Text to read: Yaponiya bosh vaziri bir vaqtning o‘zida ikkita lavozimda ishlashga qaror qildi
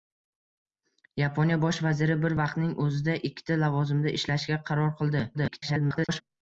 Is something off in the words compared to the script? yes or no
yes